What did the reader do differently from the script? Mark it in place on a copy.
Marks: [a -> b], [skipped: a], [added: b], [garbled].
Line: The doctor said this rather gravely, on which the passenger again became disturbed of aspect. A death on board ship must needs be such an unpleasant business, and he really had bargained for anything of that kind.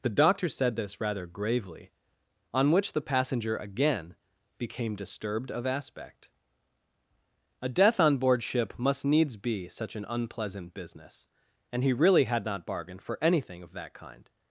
The doctor said this rather gravely, on which the passenger again became disturbed of aspect. A death on board ship must needs be such an unpleasant business, and he really had [added: not] bargained for anything of that kind.